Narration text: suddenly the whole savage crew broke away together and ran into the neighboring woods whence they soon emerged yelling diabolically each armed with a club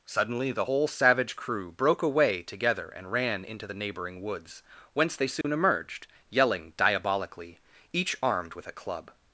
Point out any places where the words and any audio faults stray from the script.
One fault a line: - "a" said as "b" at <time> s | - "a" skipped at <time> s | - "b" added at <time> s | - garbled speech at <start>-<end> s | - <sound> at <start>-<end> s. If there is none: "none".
- dropout at 5.4-5.4 s